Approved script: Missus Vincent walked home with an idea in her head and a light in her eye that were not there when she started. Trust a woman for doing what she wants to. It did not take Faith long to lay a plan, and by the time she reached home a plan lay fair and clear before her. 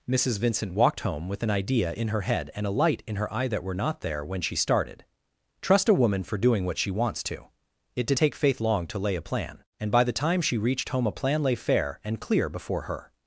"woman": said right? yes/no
yes